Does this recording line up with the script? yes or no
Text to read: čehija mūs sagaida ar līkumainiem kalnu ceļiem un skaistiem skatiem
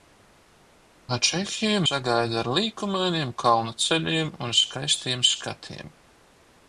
no